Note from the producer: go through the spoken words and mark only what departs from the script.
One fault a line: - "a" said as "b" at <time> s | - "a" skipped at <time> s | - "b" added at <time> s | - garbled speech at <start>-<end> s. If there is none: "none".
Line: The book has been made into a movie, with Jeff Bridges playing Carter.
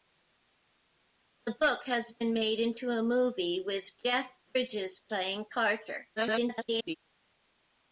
- garbled speech at 6.2-7.0 s